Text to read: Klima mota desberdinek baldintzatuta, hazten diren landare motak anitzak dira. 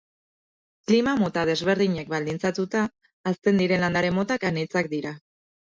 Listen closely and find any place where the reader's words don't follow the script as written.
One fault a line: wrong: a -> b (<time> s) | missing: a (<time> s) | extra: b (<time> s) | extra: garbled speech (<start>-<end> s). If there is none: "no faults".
no faults